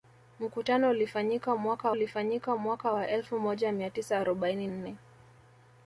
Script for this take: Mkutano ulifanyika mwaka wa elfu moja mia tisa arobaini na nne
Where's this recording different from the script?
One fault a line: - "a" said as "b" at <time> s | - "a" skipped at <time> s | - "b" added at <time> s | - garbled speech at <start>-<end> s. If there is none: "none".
- "ulifanyika mwaka" added at 1.9 s
- "na" skipped at 4.7 s